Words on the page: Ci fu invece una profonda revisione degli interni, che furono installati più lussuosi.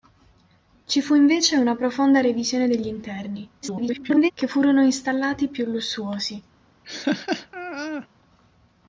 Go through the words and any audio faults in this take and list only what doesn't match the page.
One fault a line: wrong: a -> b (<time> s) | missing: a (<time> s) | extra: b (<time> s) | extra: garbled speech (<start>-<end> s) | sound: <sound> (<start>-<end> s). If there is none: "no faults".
extra: garbled speech (3.6-4.3 s)
sound: laugh (6.8-8.1 s)